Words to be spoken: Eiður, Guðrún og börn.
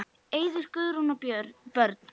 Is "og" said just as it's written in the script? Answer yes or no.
yes